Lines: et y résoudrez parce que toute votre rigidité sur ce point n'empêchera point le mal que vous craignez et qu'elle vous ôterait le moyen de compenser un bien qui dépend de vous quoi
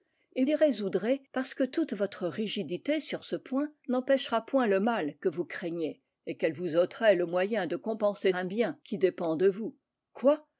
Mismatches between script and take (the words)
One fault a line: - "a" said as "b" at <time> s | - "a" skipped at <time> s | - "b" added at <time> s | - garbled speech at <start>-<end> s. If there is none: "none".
none